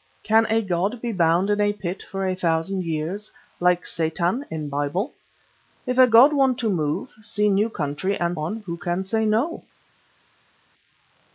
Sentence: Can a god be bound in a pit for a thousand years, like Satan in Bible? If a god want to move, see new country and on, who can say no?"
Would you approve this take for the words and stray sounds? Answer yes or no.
yes